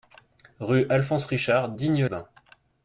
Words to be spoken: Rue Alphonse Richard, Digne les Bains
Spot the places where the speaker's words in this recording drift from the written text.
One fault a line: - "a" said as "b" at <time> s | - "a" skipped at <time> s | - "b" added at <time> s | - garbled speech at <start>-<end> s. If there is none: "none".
- "les" skipped at 2.1 s